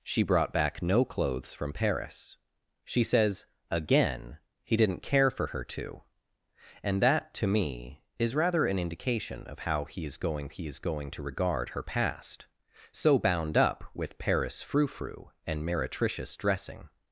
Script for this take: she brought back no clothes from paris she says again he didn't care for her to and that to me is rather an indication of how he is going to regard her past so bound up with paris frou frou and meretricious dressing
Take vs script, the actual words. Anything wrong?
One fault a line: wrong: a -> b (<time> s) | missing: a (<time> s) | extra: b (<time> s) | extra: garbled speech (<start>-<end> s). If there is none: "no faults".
extra: he is going (10.5 s)